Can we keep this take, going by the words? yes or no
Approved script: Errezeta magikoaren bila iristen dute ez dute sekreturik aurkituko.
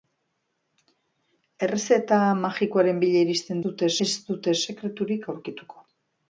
yes